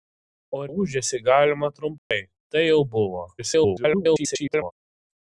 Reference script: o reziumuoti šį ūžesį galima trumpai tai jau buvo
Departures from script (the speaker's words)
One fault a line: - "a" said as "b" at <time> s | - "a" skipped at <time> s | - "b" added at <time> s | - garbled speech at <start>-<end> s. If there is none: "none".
- "reziumuoti šį" skipped at 0.6 s
- garbled speech at 3.4-4.7 s